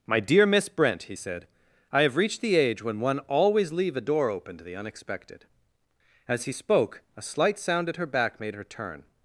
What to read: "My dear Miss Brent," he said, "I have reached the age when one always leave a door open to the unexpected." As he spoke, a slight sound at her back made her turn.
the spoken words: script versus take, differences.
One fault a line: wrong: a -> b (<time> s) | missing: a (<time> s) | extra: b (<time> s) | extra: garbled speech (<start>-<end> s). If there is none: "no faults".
no faults